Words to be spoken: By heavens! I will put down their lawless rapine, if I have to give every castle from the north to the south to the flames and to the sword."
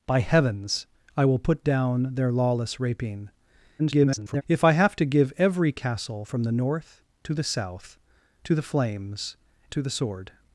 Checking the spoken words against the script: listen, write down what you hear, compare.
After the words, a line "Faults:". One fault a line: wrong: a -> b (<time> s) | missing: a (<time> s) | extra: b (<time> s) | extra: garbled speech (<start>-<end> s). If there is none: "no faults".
By heavens! I will put down their lawless rapine, [garbled] if I have to give every castle from the north to the south to the flames to the sword."
Faults:
extra: garbled speech (3.8-4.4 s)
missing: and (9.4 s)